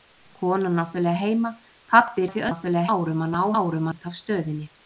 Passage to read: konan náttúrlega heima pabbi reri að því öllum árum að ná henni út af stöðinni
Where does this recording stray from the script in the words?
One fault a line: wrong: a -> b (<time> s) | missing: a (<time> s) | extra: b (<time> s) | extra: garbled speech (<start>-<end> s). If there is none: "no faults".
missing: reri (2.3 s)
wrong: öllum -> náttúrlega (2.5 s)
wrong: henni -> árum (3.6 s)